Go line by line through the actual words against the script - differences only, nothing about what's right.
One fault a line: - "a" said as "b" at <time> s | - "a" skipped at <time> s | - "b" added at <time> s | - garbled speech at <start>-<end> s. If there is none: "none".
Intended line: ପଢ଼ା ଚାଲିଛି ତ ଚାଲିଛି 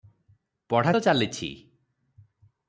- "ଚାଲିଛି" skipped at 0.9 s